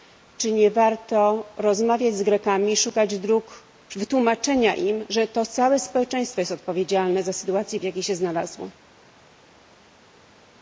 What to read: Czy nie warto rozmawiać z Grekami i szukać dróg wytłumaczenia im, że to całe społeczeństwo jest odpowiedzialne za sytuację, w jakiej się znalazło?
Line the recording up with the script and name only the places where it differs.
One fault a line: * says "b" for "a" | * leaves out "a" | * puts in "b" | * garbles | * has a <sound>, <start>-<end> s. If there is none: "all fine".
all fine